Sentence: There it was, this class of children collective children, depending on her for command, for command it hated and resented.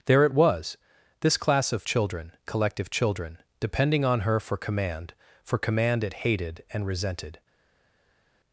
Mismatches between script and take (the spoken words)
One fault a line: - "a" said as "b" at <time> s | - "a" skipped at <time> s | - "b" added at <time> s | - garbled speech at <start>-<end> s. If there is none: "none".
none